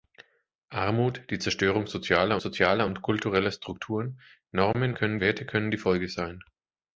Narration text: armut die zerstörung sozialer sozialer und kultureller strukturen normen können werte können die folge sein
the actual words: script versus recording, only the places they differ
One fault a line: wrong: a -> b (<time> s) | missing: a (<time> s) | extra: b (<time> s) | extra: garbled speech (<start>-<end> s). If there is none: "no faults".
no faults